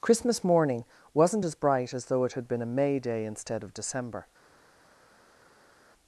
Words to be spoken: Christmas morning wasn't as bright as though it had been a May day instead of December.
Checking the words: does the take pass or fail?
pass